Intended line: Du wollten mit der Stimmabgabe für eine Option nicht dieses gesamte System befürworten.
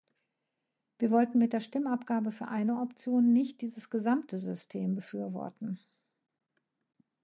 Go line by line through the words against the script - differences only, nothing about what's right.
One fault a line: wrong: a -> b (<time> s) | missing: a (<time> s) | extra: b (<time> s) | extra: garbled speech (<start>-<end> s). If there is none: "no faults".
wrong: Du -> Wir (1.0 s)